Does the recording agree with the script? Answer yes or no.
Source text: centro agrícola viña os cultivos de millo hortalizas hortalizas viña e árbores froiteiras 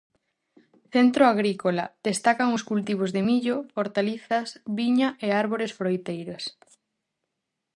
no